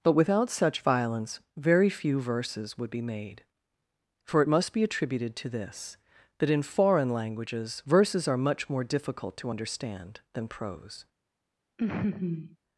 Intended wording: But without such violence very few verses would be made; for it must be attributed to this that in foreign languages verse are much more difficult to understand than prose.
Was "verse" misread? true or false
true